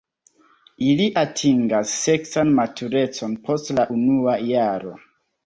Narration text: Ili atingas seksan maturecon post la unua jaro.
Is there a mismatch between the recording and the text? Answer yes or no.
no